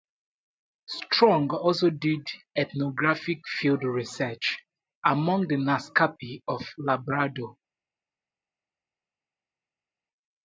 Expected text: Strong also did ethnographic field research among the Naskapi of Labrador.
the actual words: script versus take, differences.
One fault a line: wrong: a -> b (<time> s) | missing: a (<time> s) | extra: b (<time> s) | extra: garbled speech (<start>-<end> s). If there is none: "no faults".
no faults